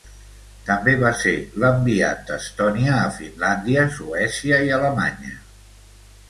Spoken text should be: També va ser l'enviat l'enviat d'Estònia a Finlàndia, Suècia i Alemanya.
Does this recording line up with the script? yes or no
no